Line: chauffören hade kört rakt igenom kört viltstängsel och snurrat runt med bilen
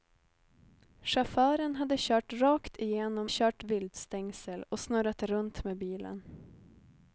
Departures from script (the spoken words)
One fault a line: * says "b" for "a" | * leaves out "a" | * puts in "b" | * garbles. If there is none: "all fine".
all fine